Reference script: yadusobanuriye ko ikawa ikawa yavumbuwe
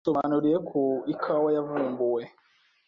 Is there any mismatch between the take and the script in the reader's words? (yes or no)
yes